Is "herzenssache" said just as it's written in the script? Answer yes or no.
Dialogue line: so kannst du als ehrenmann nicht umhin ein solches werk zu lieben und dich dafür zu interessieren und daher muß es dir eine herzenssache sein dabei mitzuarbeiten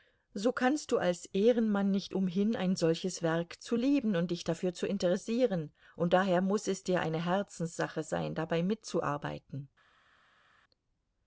yes